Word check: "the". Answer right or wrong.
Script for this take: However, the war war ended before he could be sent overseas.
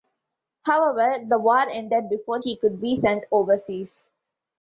right